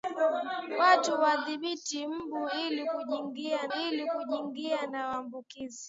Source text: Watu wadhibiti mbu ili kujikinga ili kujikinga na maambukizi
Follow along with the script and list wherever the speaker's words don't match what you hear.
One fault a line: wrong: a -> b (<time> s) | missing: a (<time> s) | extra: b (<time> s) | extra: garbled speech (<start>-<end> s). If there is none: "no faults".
no faults